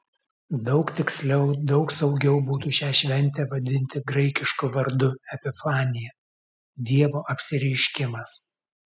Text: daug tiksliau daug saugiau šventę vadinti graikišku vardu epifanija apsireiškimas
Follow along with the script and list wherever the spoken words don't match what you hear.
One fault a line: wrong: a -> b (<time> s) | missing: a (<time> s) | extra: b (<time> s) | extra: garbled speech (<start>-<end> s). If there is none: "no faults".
extra: būtų šią (2.5 s)
extra: dievo (6.9 s)